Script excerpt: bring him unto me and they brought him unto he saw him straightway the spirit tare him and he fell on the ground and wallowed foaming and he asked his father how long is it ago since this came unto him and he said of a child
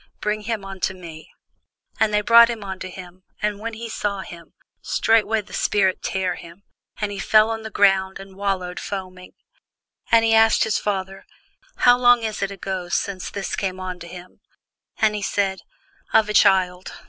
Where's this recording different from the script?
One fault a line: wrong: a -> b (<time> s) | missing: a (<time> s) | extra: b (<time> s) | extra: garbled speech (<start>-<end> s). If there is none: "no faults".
extra: him and when (2.9 s)